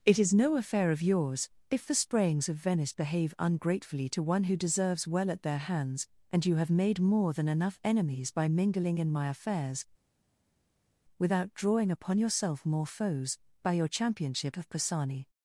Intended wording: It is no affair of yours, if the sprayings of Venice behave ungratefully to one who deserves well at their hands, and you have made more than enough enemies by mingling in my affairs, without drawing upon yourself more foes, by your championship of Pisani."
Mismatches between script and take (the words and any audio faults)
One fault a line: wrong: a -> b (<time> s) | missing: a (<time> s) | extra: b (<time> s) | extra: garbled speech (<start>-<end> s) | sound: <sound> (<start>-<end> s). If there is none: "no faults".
no faults